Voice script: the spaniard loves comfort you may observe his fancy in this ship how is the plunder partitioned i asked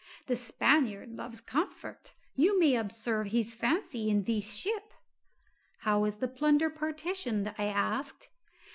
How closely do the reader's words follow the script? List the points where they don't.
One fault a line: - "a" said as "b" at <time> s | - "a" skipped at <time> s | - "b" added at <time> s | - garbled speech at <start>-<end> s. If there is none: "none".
none